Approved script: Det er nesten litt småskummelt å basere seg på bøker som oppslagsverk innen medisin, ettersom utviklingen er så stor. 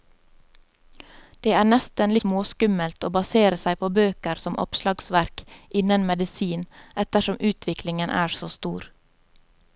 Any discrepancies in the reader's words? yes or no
yes